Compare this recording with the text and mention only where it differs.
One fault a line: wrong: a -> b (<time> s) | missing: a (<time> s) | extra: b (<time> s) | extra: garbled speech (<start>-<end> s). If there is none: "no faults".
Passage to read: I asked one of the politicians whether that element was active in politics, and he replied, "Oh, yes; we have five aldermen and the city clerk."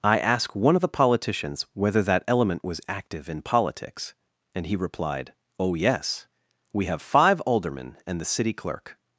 no faults